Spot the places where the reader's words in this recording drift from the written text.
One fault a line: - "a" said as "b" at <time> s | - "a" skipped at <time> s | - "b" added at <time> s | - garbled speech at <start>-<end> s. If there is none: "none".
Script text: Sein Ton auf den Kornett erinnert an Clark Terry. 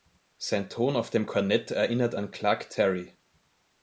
- "den" said as "dem" at 1.1 s